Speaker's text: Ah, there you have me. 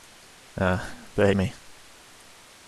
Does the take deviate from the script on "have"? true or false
true